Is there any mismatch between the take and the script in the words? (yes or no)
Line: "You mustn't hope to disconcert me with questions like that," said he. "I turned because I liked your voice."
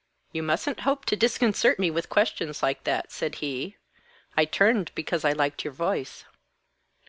no